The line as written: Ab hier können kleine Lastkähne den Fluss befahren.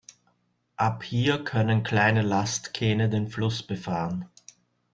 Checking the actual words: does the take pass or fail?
pass